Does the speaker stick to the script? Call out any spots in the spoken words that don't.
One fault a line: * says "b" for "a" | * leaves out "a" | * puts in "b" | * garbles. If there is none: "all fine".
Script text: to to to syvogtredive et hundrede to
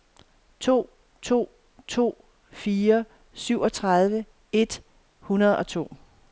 * puts in "fire"
* puts in "og"